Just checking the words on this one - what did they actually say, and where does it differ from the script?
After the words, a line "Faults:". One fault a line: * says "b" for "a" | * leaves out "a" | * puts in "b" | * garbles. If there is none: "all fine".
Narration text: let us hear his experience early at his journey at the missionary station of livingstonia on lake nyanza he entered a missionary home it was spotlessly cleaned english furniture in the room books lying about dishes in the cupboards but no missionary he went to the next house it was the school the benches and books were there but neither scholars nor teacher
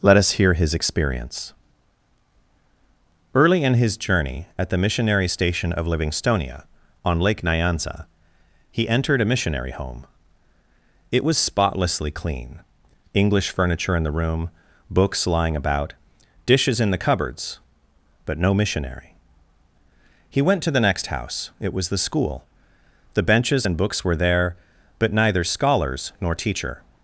let us hear his experience early in his journey at the missionary station of livingstonia on lake nyanza he entered a missionary home it was spotlessly clean english furniture in the room books lying about dishes in the cupboards but no missionary he went to the next house it was the school the benches and books were there but neither scholars nor teacher
Faults:
* says "in" for "at"
* says "clean" for "cleaned"